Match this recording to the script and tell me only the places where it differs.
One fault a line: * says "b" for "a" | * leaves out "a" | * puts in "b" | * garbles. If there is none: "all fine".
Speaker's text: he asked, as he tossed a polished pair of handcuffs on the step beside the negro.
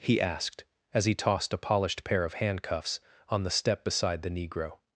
all fine